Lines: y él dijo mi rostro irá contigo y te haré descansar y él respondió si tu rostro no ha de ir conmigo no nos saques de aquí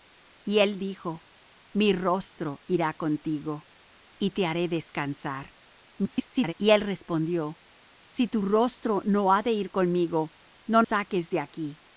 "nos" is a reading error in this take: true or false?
true